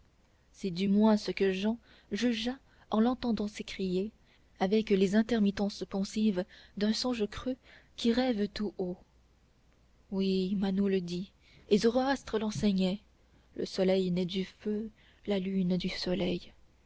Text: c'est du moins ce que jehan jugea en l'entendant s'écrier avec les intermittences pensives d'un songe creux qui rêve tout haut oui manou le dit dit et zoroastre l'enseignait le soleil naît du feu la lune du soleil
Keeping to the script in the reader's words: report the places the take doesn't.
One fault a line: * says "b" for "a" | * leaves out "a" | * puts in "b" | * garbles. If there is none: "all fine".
* leaves out "dit"